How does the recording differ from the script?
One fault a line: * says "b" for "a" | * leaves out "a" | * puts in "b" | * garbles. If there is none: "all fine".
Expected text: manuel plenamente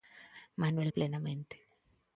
all fine